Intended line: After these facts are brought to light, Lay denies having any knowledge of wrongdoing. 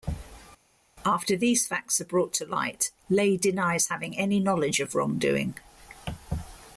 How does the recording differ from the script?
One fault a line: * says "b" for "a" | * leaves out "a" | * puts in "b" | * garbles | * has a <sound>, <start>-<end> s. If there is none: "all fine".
all fine